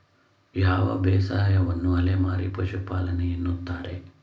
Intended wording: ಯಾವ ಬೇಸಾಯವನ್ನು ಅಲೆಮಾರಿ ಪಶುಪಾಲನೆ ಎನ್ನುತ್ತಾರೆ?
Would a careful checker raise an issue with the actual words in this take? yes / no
no